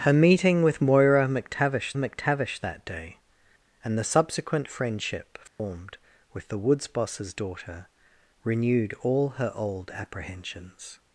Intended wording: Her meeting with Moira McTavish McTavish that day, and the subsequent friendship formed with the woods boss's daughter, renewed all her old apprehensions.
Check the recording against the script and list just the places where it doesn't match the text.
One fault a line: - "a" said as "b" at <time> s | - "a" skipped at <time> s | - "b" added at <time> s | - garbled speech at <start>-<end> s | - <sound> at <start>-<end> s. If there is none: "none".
- dropout at 5.5-5.6 s